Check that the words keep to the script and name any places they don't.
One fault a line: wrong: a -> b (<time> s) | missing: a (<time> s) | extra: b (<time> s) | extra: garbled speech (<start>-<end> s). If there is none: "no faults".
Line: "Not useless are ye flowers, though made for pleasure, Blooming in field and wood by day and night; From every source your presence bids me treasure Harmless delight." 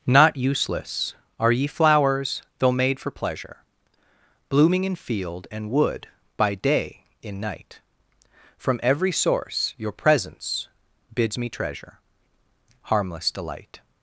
wrong: and -> in (7.2 s)